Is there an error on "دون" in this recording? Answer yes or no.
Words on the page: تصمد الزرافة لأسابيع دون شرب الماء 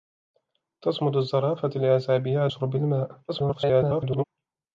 yes